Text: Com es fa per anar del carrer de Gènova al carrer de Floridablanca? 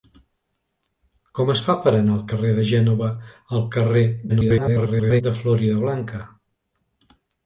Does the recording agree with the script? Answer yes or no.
no